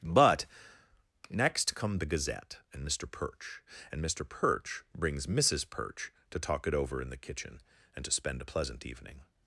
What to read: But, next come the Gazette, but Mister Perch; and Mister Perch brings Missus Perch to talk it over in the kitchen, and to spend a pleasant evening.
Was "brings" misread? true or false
false